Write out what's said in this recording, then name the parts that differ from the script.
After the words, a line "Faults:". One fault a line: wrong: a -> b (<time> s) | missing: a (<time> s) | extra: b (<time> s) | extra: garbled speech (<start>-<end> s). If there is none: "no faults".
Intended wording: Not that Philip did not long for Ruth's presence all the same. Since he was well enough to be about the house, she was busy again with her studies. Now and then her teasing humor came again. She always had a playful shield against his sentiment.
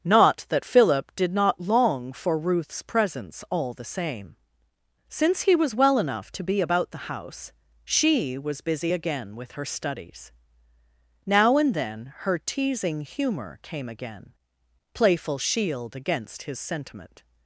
Not that Philip did not long for Ruth's presence all the same. Since he was well enough to be about the house, she was busy again with her studies. Now and then her teasing humor came again. playful shield against his sentiment.
Faults:
missing: She always had a (14.3 s)